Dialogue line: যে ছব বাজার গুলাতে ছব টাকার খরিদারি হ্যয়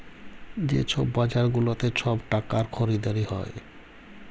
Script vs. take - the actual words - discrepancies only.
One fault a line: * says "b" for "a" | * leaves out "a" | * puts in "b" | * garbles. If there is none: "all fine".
all fine